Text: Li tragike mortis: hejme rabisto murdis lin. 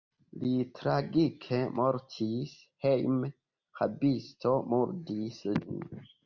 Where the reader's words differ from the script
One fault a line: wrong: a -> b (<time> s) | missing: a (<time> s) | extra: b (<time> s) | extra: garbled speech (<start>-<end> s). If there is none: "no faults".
no faults